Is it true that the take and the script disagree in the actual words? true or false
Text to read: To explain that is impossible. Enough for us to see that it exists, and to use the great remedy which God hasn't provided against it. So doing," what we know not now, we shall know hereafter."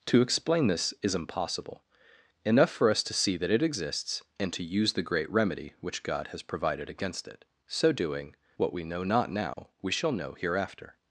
true